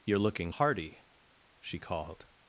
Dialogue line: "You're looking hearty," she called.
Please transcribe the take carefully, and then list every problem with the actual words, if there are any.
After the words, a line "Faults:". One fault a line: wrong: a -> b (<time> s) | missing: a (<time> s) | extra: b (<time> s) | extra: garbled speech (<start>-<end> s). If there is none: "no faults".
"You're looking hearty," she called.
Faults:
no faults